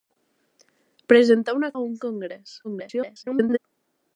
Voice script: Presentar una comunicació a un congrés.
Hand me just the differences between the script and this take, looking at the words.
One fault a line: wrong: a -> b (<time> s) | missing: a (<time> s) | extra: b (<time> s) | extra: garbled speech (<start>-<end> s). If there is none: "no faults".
missing: comunicació (1.7 s)
extra: garbled speech (2.6-3.6 s)